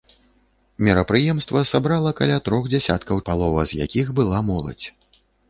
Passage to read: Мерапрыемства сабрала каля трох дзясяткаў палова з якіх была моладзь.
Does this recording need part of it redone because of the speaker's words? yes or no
no